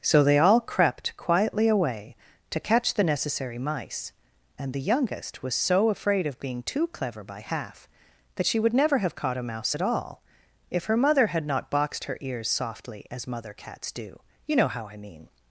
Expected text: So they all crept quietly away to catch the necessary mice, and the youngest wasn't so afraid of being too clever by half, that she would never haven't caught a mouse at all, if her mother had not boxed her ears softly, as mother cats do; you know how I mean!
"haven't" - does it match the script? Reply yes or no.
no